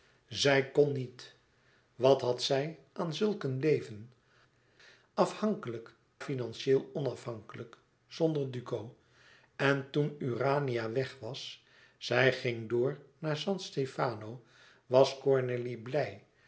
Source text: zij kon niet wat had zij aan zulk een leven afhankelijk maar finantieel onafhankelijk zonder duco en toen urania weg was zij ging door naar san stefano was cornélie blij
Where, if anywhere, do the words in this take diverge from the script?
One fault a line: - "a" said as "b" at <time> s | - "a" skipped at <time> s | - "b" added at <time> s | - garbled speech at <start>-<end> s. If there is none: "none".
- "maar" skipped at 6.0 s